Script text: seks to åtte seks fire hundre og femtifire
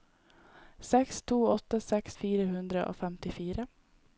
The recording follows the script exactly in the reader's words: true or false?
true